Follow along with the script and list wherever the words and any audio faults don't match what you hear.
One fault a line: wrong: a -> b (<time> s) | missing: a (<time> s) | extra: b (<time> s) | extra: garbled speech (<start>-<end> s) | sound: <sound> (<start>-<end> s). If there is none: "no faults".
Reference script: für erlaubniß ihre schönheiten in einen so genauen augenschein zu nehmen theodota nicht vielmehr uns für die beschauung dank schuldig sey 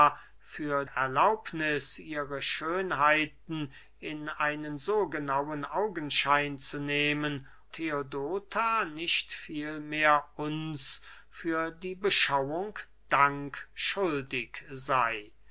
no faults